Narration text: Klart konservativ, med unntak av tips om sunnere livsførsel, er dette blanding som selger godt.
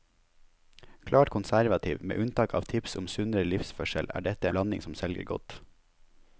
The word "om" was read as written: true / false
true